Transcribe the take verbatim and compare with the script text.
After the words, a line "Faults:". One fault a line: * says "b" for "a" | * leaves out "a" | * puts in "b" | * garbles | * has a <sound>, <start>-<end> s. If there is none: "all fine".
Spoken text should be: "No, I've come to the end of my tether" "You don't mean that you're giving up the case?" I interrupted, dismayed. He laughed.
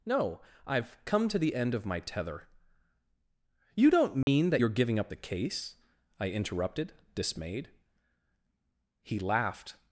"No, I've come to the end of my tether" "You don't mean that you're giving up the case?" I interrupted, dismayed. He laughed.
Faults:
* has a dropout, 4.2-4.3 s